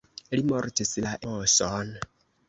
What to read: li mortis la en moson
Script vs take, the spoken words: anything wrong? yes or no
yes